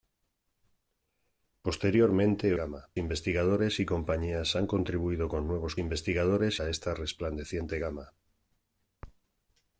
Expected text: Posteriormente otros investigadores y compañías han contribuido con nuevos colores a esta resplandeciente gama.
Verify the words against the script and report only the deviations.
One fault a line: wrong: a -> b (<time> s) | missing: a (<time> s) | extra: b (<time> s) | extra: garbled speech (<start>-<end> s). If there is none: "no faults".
wrong: otros -> gama (2.6 s)
wrong: colores -> investigadores (5.8 s)